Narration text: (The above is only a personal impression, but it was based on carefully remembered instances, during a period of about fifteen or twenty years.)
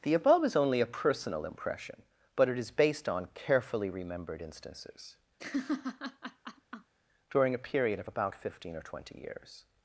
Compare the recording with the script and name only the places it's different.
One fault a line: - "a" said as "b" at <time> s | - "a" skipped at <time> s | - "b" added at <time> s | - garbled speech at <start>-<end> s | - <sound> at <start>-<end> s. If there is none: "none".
- "was" said as "is" at 2.6 s
- laugh at 5.4-6.9 s